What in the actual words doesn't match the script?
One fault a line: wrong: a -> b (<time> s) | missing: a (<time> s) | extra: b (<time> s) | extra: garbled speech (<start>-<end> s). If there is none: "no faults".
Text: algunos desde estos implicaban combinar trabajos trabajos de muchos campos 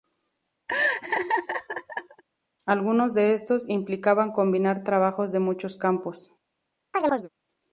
wrong: desde -> de (3.1 s)
missing: trabajos (5.3 s)